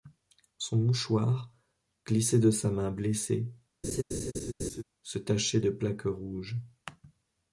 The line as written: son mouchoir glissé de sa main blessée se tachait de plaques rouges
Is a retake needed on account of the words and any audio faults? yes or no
yes